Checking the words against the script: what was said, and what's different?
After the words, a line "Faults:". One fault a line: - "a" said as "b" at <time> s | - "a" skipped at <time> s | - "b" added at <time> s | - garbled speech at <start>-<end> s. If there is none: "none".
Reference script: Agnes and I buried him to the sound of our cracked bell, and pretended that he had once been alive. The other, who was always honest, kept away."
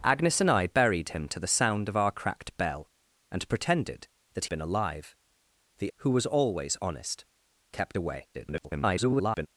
Agnes and I buried him to the sound of our cracked bell, and pretended that been alive. The who was always honest, kept away." [garbled]
Faults:
- "he had once" skipped at 4.5 s
- "other" skipped at 5.9 s
- garbled speech at 8.3-9.5 s